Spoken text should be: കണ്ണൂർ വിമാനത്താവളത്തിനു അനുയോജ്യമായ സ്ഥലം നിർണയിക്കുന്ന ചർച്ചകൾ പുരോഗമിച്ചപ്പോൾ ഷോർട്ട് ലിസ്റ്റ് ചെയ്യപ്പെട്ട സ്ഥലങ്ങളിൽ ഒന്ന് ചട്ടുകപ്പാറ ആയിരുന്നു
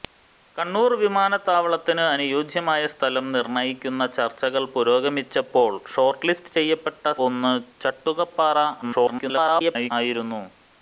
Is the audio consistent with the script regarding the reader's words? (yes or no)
no